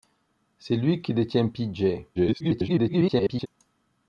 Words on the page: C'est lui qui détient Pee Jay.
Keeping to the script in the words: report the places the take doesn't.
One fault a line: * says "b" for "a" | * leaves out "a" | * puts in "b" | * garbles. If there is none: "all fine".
* garbles